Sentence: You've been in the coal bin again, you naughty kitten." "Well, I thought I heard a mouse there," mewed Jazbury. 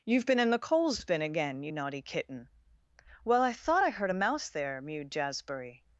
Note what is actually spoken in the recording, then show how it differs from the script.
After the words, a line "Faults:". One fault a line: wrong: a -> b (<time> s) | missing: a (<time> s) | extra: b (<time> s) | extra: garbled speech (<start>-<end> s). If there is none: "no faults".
You've been in the coals bin again, you naughty kitten." "Well, I thought I heard a mouse there," mewed Jazbury.
Faults:
wrong: coal -> coals (0.6 s)